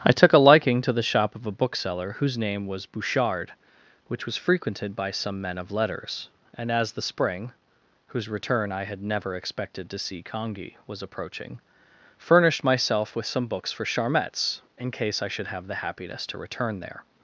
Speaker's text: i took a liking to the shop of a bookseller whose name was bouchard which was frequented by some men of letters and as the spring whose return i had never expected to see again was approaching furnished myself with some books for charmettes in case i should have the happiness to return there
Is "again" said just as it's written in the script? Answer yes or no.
no